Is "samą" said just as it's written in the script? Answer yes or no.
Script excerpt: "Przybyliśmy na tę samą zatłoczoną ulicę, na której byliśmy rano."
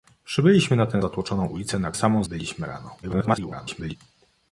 no